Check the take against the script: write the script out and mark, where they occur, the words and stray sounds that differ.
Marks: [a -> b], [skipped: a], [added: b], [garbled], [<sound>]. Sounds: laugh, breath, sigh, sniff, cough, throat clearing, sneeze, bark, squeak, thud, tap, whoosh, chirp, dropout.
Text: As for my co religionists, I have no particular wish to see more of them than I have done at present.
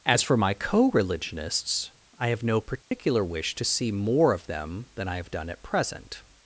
As for my co religionists, I have no particular [dropout] wish to see more of them than I have done at present.